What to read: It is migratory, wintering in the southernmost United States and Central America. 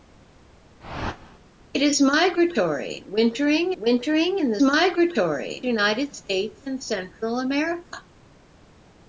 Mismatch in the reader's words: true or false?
true